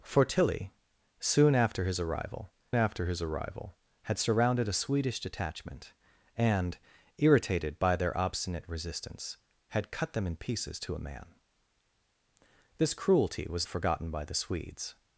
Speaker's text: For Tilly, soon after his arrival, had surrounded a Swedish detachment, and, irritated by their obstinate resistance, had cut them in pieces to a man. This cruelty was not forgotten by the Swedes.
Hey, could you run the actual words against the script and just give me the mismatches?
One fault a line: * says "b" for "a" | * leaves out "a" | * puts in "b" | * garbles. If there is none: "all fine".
* puts in "after his arrival"
* leaves out "not"